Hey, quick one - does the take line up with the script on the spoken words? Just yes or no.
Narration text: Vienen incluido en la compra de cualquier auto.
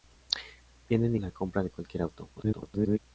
no